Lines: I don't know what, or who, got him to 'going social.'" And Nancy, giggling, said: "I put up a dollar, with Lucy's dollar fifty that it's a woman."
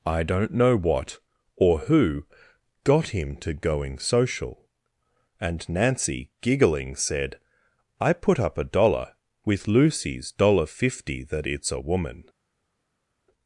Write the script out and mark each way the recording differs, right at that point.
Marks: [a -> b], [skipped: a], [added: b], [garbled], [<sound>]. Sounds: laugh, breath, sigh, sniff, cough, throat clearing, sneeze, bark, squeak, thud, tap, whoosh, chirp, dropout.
I don't know what, or who, got him to 'going social.'" And Nancy, giggling, said: "I put up a dollar, with Lucy's dollar fifty that it's a woman."